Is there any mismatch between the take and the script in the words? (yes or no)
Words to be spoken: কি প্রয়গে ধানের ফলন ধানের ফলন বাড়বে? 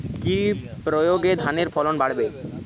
yes